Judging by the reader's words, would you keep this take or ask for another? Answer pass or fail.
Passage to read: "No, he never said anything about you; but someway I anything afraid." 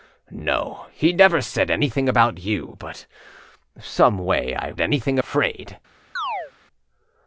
pass